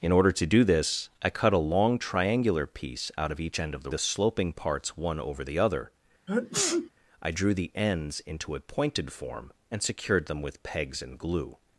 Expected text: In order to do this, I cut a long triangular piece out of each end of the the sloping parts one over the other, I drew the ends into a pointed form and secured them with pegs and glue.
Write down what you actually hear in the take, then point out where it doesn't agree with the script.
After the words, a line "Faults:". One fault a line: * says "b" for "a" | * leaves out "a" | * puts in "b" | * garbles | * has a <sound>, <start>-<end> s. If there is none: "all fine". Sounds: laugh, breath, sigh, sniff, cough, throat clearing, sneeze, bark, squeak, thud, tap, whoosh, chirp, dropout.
In order to do this, I cut a long triangular piece out of each end of the the sloping parts one over the other, I drew the ends into a pointed form and secured them with pegs and glue.
Faults:
* has a sneeze, 6.3-6.9 s